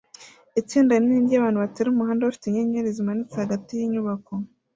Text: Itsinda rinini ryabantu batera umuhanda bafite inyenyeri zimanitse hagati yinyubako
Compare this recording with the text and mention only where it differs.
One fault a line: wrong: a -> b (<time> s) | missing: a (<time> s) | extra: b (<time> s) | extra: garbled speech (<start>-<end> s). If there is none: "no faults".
no faults